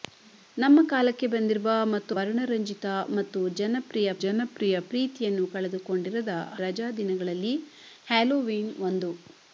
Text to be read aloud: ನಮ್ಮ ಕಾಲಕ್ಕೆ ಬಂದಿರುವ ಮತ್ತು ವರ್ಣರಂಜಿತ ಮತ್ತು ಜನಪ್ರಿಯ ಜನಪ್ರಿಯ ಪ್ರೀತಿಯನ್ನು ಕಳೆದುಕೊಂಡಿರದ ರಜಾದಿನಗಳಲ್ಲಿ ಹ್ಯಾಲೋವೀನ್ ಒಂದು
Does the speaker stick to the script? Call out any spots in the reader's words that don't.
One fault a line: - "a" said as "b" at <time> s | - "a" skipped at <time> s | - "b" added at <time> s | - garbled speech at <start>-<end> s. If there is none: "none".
none